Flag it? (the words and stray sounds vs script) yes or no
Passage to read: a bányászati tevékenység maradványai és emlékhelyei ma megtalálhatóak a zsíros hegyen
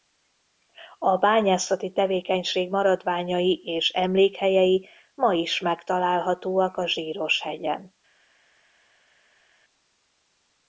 yes